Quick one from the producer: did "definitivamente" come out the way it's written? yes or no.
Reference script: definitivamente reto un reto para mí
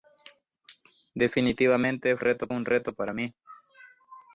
yes